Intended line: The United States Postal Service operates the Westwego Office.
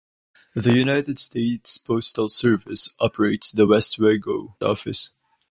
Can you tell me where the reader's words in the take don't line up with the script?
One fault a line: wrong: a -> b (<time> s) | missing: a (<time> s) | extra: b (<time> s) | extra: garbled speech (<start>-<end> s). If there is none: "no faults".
no faults